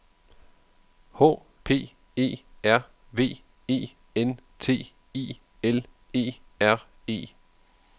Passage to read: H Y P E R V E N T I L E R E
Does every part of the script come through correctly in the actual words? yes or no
no